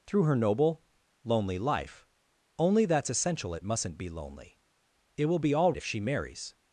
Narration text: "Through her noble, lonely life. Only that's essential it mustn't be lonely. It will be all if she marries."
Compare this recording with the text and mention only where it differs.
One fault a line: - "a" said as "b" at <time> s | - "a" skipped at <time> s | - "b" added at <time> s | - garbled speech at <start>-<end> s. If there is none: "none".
none